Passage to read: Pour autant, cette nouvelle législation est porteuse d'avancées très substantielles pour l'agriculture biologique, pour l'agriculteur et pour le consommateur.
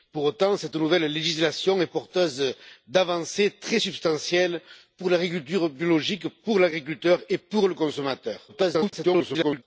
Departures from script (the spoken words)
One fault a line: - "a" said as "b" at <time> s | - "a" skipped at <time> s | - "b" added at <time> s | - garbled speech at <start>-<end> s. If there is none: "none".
- garbled speech at 8.5-9.6 s